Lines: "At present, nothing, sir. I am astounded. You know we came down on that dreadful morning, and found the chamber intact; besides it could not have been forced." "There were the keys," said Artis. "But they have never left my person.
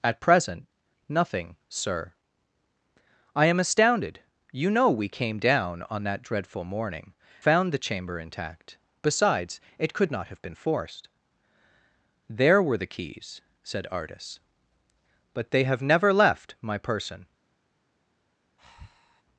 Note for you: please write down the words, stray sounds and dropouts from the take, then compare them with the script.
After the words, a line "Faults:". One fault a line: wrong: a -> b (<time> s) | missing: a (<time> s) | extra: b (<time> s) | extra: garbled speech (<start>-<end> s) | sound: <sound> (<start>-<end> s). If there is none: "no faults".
"At present, nothing, sir. I am astounded. You know we came down on that dreadful morning, found the chamber intact; besides it could not have been forced." "There were the keys," said Artis. "But they have never left my person.
Faults:
missing: and (7.1 s)
sound: breath (18.6-19.2 s)